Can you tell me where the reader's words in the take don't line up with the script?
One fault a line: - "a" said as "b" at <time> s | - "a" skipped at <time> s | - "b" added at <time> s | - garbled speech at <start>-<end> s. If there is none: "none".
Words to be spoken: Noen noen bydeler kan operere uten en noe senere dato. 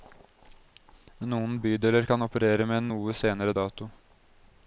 - "noen" skipped at 1.6 s
- "uten" said as "med" at 2.7 s